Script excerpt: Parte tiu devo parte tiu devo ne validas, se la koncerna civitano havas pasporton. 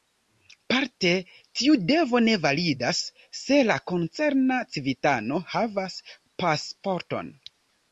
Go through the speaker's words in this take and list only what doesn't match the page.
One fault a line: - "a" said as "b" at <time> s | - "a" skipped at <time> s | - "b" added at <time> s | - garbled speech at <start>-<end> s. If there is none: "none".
- "parte tiu devo" skipped at 2.2 s